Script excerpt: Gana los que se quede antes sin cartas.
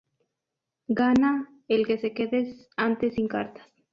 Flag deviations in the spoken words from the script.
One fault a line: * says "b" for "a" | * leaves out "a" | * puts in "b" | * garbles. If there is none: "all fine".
* says "el" for "los"